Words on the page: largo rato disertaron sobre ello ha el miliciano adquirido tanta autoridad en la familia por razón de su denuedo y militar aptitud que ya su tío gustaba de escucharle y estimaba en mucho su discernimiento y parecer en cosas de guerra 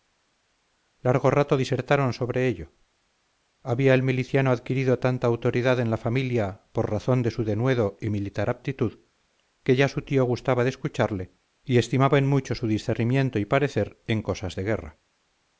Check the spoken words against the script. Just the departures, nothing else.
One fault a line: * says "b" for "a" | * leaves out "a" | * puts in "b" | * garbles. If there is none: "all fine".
* says "había" for "ha"